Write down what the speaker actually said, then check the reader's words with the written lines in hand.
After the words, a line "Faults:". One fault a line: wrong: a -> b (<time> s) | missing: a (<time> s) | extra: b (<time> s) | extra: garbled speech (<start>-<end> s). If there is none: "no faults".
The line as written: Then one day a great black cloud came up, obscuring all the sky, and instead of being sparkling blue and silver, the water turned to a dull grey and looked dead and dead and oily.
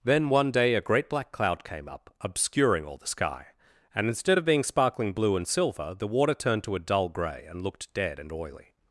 Then one day a great black cloud came up, obscuring all the sky, and instead of being sparkling blue and silver, the water turned to a dull grey and looked dead and oily.
Faults:
missing: dead and (8.3 s)